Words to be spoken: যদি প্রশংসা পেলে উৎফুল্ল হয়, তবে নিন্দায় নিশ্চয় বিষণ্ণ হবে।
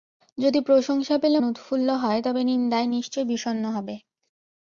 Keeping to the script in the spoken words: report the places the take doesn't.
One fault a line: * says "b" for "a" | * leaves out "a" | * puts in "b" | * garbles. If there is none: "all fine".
all fine